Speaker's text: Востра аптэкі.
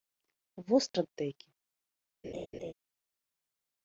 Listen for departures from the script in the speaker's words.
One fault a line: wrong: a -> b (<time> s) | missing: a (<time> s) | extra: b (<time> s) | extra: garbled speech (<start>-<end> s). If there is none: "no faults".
no faults